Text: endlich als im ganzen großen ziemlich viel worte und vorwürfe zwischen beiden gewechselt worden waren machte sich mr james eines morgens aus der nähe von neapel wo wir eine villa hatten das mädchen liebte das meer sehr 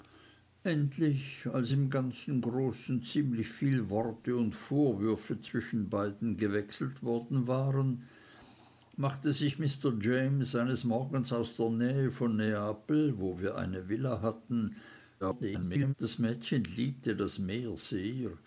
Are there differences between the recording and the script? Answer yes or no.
yes